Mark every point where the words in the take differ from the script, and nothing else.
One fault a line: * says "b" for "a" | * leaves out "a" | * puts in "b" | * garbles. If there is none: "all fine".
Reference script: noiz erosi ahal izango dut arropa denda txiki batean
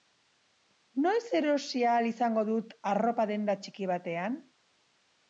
all fine